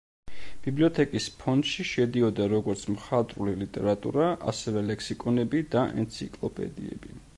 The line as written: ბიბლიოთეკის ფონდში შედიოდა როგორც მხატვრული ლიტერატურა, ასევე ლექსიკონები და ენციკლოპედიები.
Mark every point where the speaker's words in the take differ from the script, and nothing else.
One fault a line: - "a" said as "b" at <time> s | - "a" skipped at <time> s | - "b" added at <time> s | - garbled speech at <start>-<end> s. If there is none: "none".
none